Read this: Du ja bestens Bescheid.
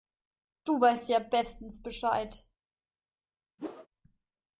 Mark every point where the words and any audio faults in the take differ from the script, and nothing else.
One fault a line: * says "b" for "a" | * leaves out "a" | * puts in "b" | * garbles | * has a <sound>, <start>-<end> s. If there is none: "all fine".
* puts in "weißt"
* has a whoosh, 3.6-3.9 s